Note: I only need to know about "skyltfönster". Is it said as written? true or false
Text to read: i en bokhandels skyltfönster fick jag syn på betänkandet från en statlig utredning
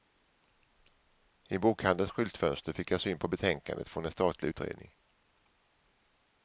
true